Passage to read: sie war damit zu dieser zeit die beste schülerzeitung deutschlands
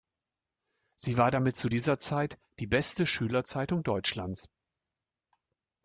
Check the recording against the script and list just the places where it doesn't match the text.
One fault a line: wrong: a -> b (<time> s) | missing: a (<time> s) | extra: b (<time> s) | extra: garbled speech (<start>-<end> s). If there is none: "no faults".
no faults